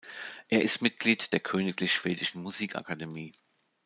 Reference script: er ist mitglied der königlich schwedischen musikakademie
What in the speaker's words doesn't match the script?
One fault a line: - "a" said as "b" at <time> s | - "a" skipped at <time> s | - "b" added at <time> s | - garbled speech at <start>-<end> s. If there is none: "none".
none